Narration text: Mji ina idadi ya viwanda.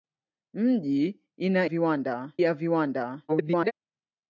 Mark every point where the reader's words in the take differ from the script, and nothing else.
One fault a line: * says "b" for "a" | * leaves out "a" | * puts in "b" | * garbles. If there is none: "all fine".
* says "viwanda" for "idadi"
* garbles